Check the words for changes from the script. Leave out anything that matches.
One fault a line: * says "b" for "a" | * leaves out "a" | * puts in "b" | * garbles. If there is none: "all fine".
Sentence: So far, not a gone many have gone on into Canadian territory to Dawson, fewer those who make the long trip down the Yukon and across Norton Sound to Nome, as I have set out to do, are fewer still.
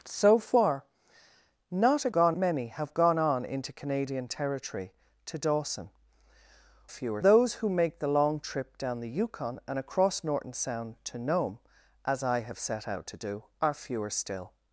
all fine